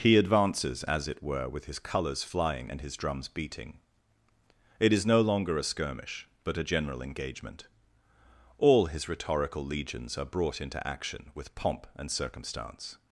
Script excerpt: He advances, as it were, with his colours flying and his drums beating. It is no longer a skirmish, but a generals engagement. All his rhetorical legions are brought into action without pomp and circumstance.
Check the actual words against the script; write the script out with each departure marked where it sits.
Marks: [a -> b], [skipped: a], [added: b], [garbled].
He advances, as it were, with his colours flying and his drums beating. It is no longer a skirmish, but a [generals -> general] engagement. All his rhetorical legions are brought into action [without -> with] pomp and circumstance.